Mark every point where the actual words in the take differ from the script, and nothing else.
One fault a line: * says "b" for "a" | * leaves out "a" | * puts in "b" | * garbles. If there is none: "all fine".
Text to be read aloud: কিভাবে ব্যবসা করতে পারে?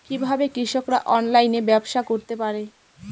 * puts in "কৃষকরা অনলাইনে"